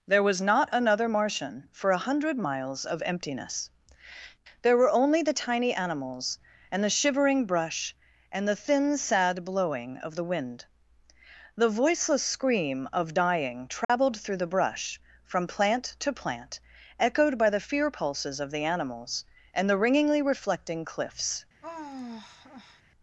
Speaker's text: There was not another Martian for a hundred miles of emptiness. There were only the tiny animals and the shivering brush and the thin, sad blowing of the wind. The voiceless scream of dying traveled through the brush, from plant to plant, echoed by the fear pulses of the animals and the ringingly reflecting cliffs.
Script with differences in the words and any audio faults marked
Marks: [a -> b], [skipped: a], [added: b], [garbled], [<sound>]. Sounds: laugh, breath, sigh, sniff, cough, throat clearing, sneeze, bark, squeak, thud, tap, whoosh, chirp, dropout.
There was not another Martian for a hundred miles of emptiness. There were only the tiny animals and the shivering brush and the thin, sad blowing of the wind. The voiceless scream of dying traveled [dropout] through the brush, from plant to plant, echoed by the fear pulses of the animals and the ringingly reflecting cliffs. [sigh]